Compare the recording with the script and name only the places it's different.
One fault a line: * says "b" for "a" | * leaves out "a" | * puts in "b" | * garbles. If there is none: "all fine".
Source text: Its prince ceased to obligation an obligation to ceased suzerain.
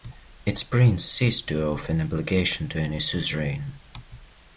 * says "owe" for "obligation"
* says "any" for "ceased"